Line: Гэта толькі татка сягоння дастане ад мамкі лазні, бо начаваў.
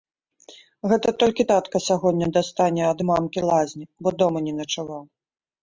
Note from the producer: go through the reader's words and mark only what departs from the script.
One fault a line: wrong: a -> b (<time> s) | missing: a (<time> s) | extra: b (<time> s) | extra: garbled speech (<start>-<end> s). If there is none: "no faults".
extra: дома не (4.2 s)